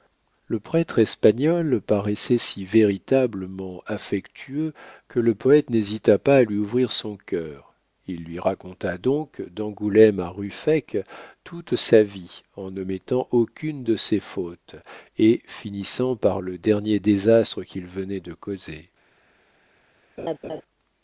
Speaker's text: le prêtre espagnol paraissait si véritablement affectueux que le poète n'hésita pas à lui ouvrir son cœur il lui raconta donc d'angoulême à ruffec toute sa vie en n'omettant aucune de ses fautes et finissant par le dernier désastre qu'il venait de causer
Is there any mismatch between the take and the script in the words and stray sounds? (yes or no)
yes